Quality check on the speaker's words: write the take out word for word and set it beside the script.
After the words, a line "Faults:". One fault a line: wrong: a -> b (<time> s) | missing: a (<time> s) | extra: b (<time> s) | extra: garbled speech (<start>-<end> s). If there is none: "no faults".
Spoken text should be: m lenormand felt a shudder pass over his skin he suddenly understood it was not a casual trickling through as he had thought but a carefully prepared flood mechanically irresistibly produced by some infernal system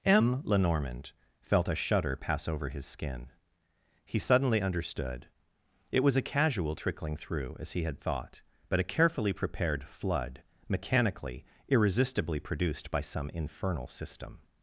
m lenormand felt a shudder pass over his skin he suddenly understood it was a casual trickling through as he had thought but a carefully prepared flood mechanically irresistibly produced by some infernal system
Faults:
missing: not (6.2 s)